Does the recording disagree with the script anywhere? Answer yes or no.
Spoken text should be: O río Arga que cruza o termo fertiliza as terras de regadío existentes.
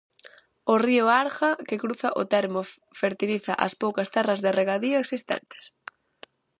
yes